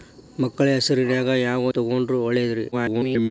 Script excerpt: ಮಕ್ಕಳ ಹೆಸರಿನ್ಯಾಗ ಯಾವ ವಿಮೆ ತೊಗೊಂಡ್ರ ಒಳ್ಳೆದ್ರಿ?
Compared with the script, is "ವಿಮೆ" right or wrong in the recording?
wrong